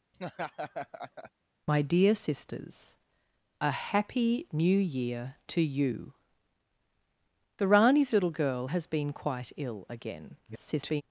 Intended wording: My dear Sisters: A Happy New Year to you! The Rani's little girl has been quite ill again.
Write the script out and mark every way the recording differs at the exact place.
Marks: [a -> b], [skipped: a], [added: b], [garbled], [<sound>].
[laugh] My dear Sisters: A Happy New Year to you! The Rani's little girl has been quite ill again. [garbled]